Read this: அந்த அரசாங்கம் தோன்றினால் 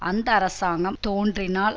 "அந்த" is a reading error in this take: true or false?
false